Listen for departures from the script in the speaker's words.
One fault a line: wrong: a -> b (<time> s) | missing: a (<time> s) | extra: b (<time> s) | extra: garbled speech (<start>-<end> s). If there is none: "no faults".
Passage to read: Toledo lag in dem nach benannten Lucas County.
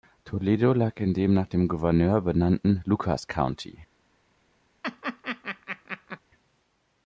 extra: dem Gouverneur (1.5 s)